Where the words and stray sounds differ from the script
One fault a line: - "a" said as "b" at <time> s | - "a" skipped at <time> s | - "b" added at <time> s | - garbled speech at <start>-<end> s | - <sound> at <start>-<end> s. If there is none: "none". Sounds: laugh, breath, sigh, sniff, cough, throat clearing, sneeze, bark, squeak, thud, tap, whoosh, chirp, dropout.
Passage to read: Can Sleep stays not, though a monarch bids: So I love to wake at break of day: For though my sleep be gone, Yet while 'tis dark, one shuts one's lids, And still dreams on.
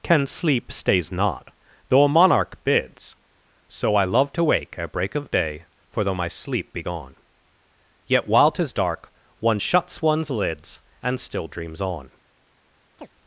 - chirp at 13.0-13.1 s